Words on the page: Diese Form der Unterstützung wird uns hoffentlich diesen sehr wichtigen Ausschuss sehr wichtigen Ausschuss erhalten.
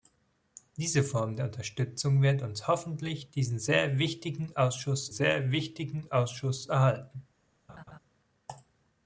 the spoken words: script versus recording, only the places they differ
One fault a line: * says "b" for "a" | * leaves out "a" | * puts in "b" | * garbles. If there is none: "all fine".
all fine